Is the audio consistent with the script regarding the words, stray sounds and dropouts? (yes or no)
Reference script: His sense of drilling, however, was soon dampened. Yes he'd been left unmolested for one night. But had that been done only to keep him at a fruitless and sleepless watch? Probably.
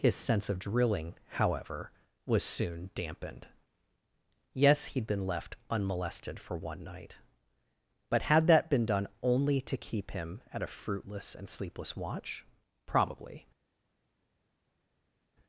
yes